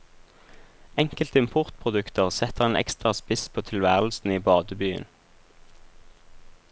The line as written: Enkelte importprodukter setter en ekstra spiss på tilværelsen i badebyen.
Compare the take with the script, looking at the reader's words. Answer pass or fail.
pass